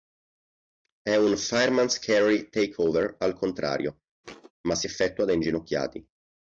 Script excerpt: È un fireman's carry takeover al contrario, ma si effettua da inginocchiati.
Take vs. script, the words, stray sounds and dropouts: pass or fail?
fail